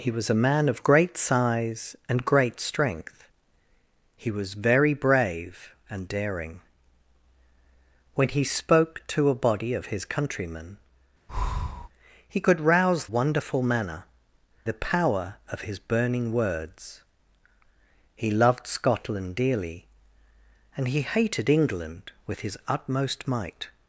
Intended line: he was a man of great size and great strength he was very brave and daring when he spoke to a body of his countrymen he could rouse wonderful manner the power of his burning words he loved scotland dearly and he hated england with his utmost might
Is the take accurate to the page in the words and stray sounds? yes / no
no